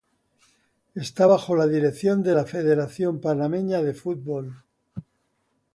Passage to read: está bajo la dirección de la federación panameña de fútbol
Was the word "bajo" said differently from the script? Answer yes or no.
no